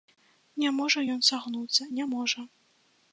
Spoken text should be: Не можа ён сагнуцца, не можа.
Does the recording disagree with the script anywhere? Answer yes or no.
no